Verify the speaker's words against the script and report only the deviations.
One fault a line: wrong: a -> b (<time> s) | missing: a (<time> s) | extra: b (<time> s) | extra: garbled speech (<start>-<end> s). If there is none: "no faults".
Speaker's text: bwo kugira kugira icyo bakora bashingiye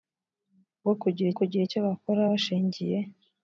no faults